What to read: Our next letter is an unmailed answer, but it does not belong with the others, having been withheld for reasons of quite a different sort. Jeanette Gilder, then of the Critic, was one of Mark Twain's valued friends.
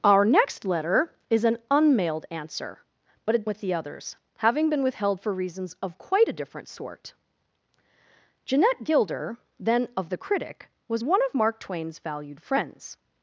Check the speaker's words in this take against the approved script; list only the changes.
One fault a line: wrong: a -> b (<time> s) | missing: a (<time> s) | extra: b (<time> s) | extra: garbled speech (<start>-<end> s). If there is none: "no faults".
missing: does not belong (3.5 s)